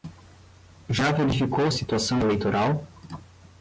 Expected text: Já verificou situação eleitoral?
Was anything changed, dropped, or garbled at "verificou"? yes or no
no